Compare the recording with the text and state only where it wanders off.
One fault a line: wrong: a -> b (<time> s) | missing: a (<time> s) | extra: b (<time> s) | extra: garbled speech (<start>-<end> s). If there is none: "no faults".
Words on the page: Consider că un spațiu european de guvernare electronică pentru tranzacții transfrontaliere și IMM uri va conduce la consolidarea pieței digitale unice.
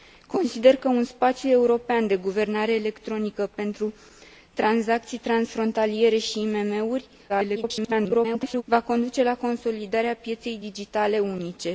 extra: garbled speech (7.3-8.6 s)